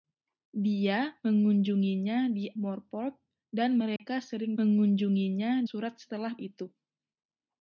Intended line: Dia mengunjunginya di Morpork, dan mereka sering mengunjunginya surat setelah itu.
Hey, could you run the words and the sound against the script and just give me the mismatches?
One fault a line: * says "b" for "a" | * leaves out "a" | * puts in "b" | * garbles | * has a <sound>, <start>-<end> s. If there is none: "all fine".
* has a dropout, 4.0-4.0 s